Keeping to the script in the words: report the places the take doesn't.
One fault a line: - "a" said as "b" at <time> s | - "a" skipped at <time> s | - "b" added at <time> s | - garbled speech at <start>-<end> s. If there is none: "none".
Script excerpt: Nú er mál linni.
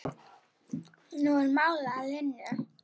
- "að" added at 1.9 s